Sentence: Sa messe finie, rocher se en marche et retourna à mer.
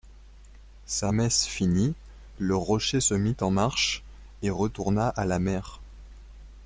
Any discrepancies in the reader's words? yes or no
yes